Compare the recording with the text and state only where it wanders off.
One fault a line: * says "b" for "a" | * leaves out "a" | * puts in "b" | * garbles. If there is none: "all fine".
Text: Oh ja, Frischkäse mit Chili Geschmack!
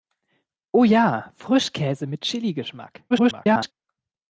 * garbles